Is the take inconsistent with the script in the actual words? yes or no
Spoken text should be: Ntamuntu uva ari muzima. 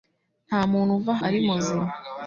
no